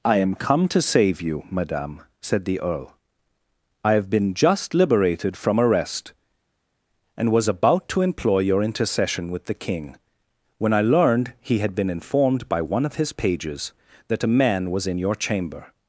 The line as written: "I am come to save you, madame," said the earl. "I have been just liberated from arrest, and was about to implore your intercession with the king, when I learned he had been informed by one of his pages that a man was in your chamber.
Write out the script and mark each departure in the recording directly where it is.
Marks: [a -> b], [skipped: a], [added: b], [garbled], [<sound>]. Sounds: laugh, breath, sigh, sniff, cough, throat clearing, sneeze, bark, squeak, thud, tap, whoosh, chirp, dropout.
"I am come to save you, madame," said the earl. "I have been just liberated from arrest, and was about to [implore -> employ] your intercession with the king, when I learned he had been informed by one of his pages that a man was in your chamber.